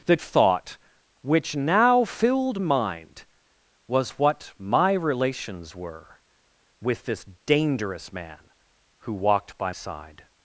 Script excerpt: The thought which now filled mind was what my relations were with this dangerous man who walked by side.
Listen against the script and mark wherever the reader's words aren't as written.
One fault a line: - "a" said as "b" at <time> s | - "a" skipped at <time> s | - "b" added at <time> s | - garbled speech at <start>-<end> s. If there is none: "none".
none